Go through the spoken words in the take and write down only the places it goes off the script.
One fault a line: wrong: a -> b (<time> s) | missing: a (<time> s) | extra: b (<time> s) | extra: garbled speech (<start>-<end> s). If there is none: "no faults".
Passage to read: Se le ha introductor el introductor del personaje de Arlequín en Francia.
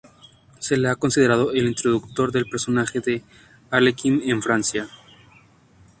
wrong: introductor -> considerado (0.9 s)